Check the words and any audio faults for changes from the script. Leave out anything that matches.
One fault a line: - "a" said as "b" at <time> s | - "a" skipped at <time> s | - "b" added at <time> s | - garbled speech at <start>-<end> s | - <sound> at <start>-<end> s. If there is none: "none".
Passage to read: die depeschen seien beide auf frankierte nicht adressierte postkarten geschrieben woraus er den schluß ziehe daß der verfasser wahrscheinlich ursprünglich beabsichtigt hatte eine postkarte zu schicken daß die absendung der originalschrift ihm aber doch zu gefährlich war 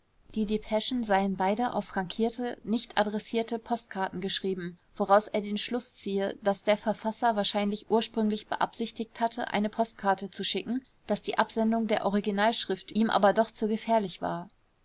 none